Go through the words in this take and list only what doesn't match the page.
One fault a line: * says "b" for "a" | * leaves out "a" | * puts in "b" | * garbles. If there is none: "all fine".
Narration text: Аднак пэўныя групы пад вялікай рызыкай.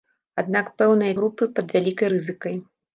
all fine